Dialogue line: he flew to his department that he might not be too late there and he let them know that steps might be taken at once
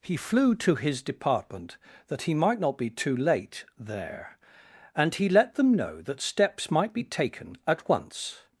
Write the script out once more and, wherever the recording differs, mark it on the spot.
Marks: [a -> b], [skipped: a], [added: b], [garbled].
he flew to his department that he might not be too late there and he let them know that steps might be taken at once